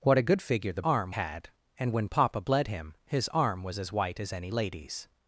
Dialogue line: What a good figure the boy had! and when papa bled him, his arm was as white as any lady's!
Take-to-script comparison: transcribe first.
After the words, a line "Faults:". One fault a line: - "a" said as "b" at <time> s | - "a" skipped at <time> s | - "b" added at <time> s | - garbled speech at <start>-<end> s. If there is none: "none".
What a good figure the arm had! and when papa bled him, his arm was as white as any lady's!
Faults:
- "boy" said as "arm" at 0.8 s